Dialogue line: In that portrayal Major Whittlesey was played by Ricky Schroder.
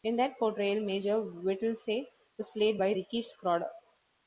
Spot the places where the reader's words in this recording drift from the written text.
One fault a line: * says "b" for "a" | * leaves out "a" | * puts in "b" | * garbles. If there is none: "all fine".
all fine